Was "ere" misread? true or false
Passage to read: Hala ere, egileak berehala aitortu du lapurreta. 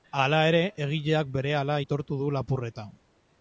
false